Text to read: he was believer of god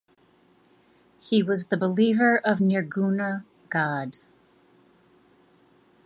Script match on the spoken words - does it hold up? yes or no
no